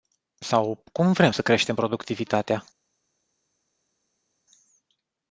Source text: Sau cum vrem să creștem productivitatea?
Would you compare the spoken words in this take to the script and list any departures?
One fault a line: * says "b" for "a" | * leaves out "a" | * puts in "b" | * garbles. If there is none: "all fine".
all fine